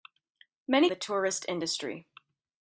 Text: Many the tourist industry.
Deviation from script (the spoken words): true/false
false